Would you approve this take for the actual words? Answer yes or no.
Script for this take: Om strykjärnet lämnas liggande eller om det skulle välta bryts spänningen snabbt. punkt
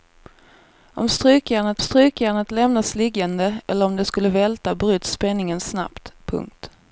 no